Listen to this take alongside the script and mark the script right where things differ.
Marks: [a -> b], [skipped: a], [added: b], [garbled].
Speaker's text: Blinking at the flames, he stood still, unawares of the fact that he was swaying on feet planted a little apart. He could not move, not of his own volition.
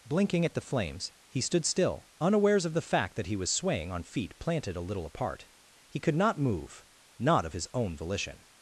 Blinking at the flames, he stood still, unawares of the fact that he was swaying on feet planted a little apart. He could not move, not of his own volition.